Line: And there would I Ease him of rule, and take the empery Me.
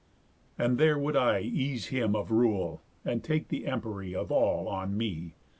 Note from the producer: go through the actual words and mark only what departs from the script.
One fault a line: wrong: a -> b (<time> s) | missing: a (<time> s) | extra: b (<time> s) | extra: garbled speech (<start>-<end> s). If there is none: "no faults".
extra: Of all on (4.2 s)